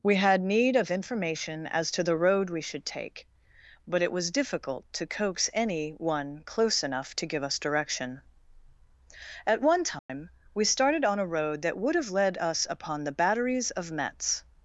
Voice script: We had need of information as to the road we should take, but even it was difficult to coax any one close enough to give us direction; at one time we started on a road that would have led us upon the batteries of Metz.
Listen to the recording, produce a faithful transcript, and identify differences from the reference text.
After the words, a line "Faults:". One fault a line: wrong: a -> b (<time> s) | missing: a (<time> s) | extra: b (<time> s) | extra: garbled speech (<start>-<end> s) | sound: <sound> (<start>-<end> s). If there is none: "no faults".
We had need of information as to the road we should take, but it was difficult to coax any one close enough to give us direction; at one time we started on a road that would have led us upon the batteries of Metz.
Faults:
missing: even (4.0 s)
sound: dropout (10.0-10.1 s)